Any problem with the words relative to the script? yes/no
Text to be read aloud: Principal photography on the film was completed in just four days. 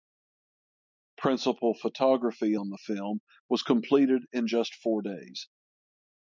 no